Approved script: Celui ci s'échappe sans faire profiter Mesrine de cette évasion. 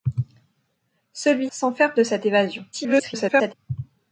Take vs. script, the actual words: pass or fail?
fail